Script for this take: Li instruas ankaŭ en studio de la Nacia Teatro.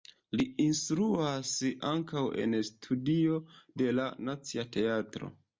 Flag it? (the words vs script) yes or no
no